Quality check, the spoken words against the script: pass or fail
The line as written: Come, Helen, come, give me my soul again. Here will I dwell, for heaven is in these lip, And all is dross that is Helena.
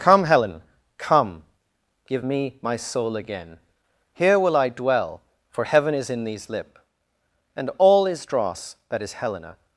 pass